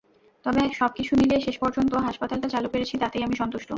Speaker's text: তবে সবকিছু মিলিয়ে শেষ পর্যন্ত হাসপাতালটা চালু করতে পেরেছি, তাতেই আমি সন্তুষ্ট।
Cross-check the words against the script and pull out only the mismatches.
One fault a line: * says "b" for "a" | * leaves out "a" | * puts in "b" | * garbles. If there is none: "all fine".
* leaves out "করতে"